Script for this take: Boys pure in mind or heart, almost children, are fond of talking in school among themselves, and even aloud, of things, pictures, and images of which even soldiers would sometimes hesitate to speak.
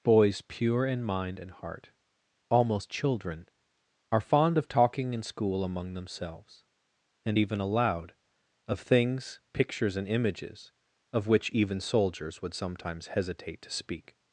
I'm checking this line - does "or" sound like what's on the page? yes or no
no